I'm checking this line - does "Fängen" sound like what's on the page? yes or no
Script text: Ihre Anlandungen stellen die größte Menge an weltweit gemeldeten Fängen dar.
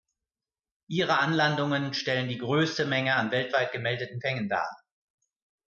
yes